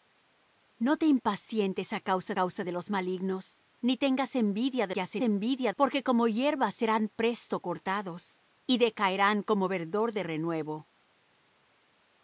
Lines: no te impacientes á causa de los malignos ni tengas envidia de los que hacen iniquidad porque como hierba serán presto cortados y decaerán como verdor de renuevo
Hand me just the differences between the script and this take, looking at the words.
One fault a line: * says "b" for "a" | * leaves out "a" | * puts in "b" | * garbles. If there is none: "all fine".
* puts in "causa"
* leaves out "los"
* says "envidia" for "iniquidad"